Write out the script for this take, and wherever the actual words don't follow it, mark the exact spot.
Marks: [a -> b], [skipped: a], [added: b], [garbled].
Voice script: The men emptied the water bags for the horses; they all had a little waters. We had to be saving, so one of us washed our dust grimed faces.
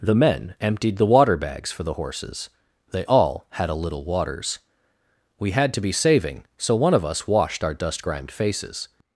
The men emptied the water bags for the horses; they all had a little waters. We had to be saving, so one of us washed our dust grimed faces.